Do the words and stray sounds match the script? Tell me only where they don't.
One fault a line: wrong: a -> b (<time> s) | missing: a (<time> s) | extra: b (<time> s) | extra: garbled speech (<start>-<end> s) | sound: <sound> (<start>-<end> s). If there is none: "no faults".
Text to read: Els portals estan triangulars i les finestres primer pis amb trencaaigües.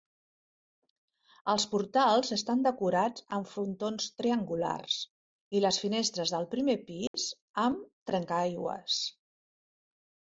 extra: decorats amb frontons (2.7 s)
extra: del (6.3 s)
sound: dropout (7.1-7.1 s)